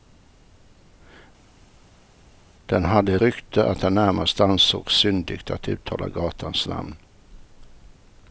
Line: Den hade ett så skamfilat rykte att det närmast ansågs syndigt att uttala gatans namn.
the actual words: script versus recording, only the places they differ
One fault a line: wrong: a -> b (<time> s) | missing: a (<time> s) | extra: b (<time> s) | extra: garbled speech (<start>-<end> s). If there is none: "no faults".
missing: så skamfilat (3.2 s)